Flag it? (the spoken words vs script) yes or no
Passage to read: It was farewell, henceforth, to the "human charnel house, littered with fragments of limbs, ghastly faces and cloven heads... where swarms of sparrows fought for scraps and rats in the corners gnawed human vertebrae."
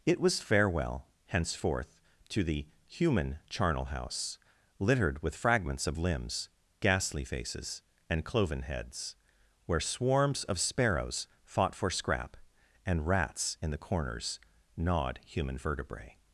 yes